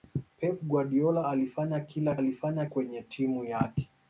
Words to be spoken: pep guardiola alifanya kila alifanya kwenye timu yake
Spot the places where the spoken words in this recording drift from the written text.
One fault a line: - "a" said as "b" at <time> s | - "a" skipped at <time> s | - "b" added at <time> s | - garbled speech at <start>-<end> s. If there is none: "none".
none